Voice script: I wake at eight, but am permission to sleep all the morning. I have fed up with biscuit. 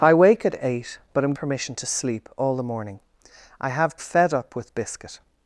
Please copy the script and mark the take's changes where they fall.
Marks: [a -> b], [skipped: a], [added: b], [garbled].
I wake at eight, but am permission to sleep all the morning. I have fed up with biscuit.